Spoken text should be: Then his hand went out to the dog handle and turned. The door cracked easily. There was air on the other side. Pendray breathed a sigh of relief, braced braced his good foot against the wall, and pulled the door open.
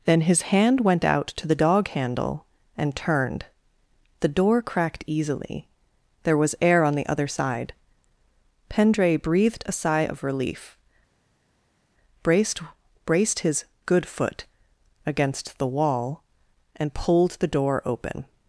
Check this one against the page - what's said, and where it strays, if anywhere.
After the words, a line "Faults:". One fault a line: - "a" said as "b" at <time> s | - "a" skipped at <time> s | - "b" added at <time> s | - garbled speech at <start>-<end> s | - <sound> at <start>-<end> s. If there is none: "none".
Then his hand went out to the dog handle and turned. The door cracked easily. There was air on the other side. Pendray breathed a sigh of relief, braced braced his good foot against the wall, and pulled the door open.
Faults:
none